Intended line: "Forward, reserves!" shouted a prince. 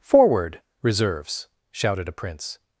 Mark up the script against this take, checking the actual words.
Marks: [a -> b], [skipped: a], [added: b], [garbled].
"Forward, reserves!" shouted a prince.